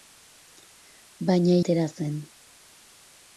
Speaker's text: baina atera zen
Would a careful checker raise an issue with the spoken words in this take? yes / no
no